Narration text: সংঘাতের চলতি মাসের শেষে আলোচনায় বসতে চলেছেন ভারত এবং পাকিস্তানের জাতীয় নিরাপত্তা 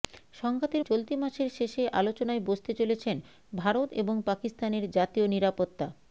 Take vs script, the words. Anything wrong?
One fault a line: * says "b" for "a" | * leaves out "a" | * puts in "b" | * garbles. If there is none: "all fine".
all fine